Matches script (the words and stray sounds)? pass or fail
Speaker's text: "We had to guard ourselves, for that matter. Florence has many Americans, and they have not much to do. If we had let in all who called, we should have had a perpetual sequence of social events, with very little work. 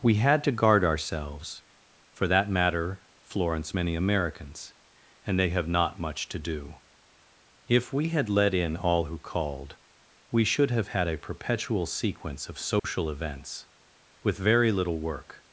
fail